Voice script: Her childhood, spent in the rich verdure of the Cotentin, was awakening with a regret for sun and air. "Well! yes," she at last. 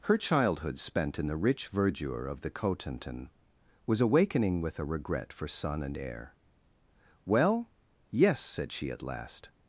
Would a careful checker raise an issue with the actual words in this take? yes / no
yes